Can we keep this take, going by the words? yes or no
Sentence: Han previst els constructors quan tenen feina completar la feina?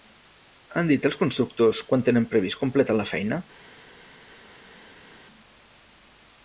no